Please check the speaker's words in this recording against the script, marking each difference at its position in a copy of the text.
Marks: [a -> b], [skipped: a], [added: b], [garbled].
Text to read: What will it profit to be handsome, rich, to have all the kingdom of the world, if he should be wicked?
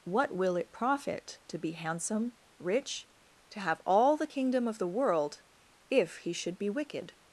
What will it profit to be handsome, rich, to have all the kingdom of the world, if he should be wicked?